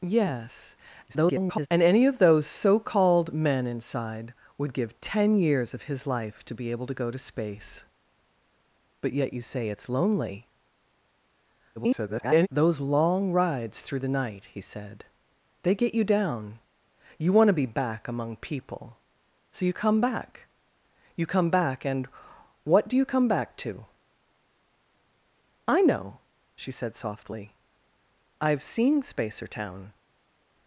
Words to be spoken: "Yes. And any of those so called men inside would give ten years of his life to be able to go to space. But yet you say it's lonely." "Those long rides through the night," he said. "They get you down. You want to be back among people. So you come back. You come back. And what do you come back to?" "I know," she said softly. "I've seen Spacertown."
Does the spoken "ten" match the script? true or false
true